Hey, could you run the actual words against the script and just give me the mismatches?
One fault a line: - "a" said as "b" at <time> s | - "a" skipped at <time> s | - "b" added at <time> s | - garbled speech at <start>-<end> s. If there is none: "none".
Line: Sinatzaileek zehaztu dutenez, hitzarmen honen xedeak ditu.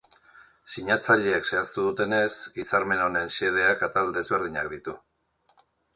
- "atal desberdinak" added at 3.9 s